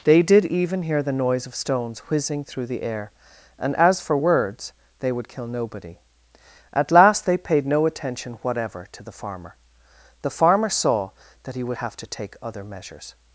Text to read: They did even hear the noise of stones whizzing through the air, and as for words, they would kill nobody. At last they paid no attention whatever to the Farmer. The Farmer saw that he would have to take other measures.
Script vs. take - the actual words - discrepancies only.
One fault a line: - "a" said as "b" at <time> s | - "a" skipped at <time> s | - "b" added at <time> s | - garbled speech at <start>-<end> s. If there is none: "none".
none